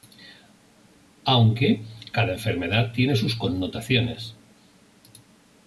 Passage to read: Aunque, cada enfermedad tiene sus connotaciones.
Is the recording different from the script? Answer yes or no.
no